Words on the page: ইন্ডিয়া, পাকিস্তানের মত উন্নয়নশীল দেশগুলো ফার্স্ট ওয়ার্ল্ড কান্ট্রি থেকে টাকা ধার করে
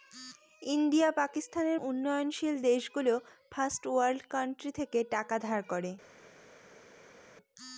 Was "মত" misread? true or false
true